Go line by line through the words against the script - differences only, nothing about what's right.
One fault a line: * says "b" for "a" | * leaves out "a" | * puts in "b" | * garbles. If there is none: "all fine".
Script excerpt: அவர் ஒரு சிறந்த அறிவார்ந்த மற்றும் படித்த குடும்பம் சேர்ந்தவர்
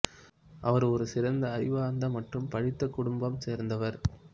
all fine